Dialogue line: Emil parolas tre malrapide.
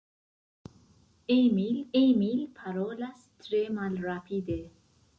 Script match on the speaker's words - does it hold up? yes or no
no